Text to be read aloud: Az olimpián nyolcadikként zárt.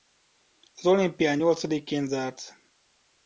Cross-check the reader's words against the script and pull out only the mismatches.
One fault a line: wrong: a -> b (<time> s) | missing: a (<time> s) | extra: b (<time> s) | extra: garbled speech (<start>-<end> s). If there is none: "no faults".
no faults